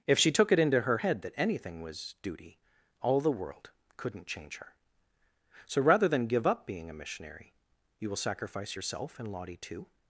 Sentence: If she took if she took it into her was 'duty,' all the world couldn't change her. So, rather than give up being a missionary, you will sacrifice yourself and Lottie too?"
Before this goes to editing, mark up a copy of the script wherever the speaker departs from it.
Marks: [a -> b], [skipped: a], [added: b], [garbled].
If she took [if she took it into her -> it into her head that anything] was 'duty,' all the world couldn't change her. So, rather than give up being a missionary, you will sacrifice yourself and Lottie too?"